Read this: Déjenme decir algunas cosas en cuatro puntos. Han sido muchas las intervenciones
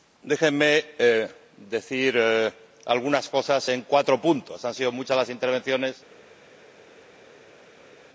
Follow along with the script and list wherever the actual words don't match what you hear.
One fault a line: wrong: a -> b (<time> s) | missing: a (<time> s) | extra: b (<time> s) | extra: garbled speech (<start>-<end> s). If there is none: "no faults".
no faults